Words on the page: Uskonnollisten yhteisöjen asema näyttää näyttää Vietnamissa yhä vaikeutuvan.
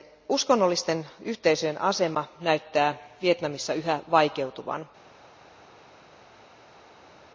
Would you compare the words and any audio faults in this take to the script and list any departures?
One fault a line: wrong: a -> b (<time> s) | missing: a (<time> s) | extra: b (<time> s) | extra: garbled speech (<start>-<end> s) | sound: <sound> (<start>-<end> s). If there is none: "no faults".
missing: näyttää (3.0 s)